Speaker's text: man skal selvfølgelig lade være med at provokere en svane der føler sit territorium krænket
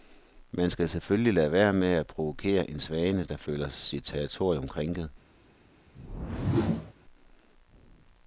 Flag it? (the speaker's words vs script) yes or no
no